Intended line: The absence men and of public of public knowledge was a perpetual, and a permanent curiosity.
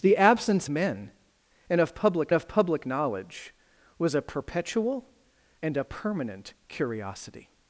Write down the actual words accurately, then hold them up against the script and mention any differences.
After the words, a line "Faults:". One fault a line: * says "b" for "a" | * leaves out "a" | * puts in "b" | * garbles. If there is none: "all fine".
The absence men and of public of public knowledge was a perpetual, and a permanent curiosity.
Faults:
all fine